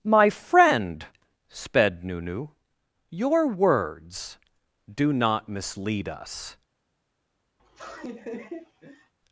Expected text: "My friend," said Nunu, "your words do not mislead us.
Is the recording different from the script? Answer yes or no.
yes